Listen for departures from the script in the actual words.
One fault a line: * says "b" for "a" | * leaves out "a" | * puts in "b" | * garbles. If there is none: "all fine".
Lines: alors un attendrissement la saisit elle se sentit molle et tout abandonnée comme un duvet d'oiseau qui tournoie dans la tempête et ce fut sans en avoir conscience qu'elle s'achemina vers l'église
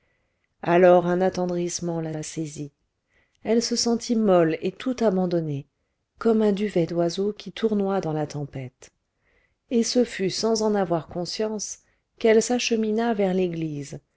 * puts in "la"